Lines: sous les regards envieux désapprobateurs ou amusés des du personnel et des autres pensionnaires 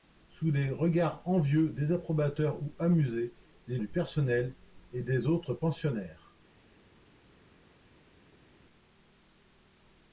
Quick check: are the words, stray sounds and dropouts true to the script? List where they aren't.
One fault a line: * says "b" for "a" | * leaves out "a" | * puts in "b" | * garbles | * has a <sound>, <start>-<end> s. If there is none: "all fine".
all fine